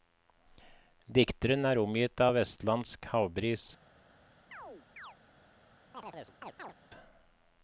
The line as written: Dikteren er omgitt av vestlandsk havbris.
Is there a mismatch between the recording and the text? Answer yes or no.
no